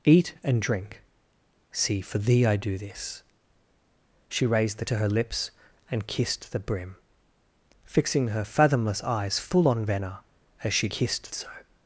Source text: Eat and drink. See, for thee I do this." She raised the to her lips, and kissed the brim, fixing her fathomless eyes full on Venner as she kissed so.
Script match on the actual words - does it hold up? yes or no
yes